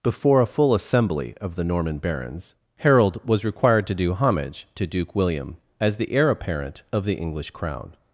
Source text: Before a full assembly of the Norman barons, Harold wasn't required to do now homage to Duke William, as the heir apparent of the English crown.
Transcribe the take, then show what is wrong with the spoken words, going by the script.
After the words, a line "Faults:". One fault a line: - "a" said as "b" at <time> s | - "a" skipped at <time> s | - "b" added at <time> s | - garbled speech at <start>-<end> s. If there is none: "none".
Before a full assembly of the Norman barons, Harold was required to do homage to Duke William, as the heir apparent of the English crown.
Faults:
- "wasn't" said as "was" at 3.3 s
- "now" skipped at 4.1 s